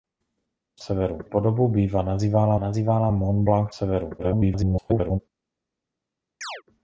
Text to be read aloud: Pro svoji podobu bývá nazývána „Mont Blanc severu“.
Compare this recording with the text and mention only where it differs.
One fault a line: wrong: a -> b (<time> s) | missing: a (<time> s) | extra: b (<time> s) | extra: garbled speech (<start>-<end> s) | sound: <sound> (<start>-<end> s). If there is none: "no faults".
wrong: svoji -> severu (0.8 s)
extra: nazývána (2.6 s)
extra: garbled speech (4.2-5.2 s)
sound: chirp (6.4-6.6 s)